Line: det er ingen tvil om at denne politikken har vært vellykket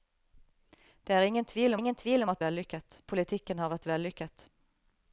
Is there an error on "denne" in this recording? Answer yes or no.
yes